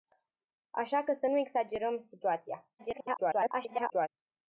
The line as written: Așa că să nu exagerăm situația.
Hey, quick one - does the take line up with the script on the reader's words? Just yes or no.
no